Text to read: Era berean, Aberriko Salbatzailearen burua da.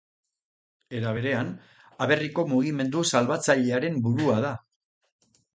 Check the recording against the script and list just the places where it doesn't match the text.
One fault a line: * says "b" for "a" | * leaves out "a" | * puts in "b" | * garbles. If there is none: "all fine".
* puts in "Mugimendu"